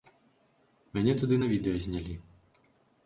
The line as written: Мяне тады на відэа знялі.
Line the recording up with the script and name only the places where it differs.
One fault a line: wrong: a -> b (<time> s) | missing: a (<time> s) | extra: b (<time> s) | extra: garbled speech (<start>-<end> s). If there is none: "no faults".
no faults